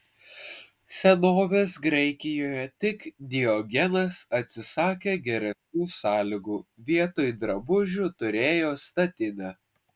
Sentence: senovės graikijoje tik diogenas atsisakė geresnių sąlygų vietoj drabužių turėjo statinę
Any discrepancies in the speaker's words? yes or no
no